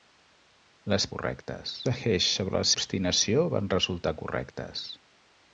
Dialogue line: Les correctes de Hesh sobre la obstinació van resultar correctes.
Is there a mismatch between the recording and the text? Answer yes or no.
no